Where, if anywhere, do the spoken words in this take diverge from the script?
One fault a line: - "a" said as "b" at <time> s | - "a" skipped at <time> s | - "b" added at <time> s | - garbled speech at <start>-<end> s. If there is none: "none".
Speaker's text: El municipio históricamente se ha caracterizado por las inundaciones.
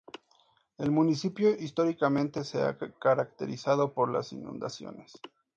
none